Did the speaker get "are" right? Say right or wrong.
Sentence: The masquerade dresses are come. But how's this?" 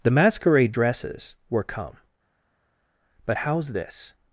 wrong